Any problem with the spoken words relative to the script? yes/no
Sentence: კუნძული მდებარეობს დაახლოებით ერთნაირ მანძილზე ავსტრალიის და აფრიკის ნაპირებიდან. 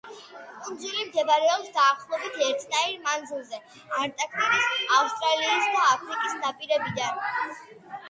yes